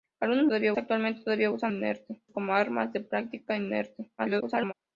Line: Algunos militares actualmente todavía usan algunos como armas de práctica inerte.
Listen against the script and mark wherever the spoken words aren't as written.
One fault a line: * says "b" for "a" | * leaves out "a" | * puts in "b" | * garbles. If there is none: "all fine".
* says "todavía" for "militares"
* says "inerte" for "algunos"
* garbles